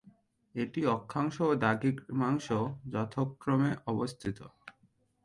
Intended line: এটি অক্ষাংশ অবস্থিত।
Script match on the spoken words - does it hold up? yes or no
no